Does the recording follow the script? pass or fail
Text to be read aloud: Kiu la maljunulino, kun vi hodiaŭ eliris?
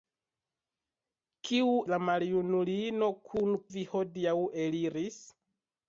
pass